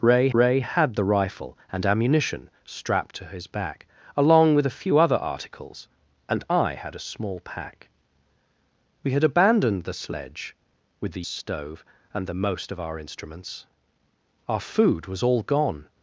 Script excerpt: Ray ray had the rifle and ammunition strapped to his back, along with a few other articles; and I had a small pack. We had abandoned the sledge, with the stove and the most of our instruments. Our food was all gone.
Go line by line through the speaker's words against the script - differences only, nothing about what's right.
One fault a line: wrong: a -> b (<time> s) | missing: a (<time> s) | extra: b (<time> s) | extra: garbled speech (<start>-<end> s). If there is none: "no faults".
no faults